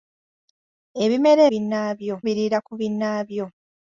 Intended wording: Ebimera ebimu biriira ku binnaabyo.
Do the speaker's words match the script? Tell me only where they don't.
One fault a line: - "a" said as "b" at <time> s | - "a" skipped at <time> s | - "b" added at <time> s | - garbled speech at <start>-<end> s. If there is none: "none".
- "ebimu" said as "binnaabyo" at 1.5 s